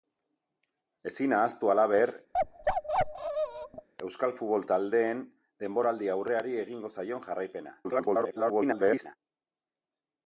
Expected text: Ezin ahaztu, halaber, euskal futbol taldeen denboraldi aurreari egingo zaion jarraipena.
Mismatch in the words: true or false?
true